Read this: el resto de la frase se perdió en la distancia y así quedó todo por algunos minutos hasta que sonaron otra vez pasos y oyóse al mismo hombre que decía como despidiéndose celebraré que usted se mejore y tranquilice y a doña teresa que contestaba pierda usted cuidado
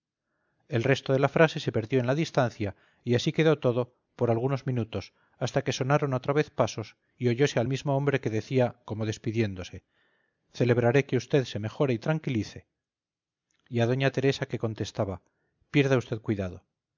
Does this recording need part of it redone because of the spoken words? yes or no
no